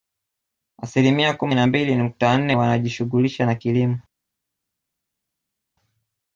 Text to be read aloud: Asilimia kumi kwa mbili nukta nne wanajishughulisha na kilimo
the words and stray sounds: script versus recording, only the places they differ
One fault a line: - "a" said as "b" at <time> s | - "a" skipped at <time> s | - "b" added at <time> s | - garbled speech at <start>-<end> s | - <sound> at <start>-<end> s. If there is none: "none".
- "kwa" said as "na" at 1.6 s